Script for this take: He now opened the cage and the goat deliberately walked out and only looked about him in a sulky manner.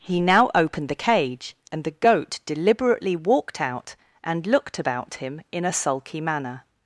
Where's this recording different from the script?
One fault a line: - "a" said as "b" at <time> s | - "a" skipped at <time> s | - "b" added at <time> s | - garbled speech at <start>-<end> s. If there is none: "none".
- "only" skipped at 4.5 s